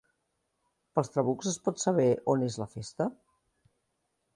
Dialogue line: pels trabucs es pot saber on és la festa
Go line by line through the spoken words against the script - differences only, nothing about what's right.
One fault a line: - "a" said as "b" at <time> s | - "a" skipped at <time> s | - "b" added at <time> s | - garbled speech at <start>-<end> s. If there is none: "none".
none